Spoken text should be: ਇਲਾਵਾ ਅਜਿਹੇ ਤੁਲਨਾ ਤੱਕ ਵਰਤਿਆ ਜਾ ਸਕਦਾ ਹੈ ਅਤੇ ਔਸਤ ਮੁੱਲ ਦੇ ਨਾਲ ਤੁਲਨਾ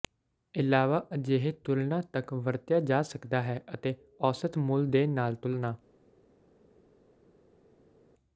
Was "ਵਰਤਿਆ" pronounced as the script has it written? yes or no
yes